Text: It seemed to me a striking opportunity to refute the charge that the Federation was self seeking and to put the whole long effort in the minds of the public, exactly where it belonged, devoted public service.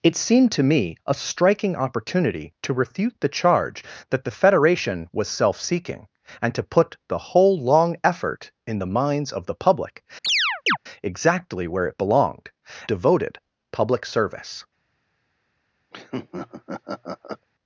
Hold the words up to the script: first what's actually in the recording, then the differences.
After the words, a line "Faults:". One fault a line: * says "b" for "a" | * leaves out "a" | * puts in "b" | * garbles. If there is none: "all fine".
It seemed to me a striking opportunity to refute the charge that the Federation was self seeking and to put the whole long effort in the minds of the public, exactly where it belonged, devoted public service.
Faults:
all fine